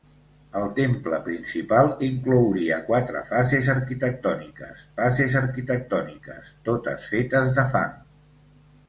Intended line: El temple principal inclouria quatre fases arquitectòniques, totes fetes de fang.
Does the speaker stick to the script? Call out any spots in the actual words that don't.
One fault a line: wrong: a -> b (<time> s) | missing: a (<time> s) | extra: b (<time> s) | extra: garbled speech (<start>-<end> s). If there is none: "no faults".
extra: fases arquitectòniques (5.0 s)